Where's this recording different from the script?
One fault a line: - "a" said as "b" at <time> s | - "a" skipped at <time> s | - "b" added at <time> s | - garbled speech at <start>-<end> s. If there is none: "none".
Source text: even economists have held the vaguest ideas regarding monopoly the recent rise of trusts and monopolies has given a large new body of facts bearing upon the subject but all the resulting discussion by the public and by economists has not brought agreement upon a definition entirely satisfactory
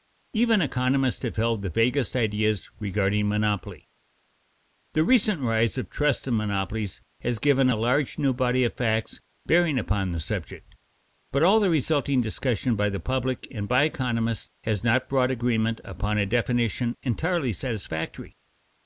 none